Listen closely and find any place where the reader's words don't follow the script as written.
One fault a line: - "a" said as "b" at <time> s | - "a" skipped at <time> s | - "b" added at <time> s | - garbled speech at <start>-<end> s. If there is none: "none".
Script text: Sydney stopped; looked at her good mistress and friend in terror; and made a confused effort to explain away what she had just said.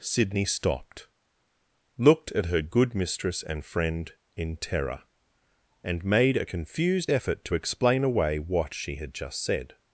none